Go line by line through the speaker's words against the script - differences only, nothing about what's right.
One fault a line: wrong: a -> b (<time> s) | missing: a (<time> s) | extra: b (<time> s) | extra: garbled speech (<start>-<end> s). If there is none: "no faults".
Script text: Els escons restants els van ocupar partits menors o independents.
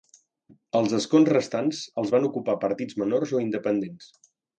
no faults